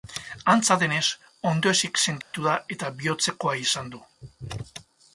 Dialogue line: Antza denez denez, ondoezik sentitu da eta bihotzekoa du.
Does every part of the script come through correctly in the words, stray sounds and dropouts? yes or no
no